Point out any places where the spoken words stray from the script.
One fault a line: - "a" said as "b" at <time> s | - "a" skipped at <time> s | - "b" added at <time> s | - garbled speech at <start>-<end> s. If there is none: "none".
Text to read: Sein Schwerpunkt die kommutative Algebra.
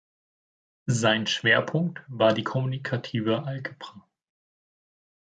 - "war" added at 2.1 s